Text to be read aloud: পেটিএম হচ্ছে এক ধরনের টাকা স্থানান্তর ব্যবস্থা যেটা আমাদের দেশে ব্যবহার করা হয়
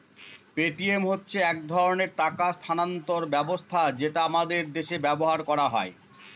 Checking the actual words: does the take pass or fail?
pass